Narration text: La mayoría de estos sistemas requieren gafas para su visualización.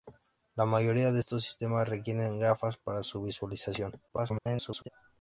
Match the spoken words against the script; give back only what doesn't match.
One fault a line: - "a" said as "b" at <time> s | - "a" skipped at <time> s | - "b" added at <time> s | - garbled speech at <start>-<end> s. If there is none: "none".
- garbled speech at 4.1-4.9 s